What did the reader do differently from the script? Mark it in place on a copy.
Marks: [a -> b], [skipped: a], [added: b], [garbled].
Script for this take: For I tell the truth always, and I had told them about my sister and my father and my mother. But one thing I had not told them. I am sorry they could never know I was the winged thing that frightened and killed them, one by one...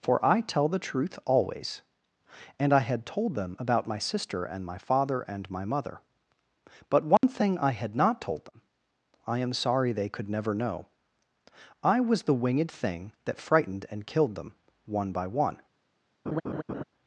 For I tell the truth always, and I had told them about my sister and my father and my mother. But one thing I had not told them. I am sorry they could never know I was the winged thing that frightened and killed them, one by one...